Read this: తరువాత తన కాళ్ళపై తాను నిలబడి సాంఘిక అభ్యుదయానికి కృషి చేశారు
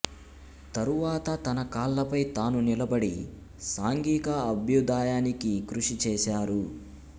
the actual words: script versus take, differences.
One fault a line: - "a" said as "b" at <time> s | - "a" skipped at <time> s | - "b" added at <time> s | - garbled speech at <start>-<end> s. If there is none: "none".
none